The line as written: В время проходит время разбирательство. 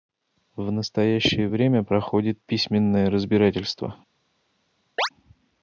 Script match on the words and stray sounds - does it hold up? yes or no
no